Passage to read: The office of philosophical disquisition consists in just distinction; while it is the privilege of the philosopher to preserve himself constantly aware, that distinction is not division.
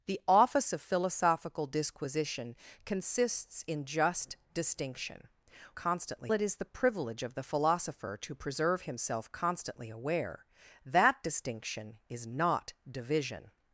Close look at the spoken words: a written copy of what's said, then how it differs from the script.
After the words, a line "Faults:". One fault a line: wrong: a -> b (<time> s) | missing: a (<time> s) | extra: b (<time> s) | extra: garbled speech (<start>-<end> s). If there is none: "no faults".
The office of philosophical disquisition consists in just distinction; constantly it is the privilege of the philosopher to preserve himself constantly aware, that distinction is not division.
Faults:
wrong: while -> constantly (5.7 s)